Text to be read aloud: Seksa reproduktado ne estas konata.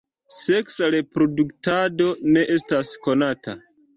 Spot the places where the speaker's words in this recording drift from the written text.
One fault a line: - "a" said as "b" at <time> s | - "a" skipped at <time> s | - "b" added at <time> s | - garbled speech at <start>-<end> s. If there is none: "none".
none